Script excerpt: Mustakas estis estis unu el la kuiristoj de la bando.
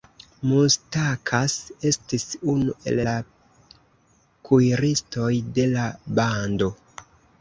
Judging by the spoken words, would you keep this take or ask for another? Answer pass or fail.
fail